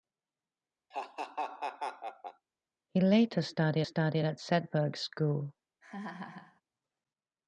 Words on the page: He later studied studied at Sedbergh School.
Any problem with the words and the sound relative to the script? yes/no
yes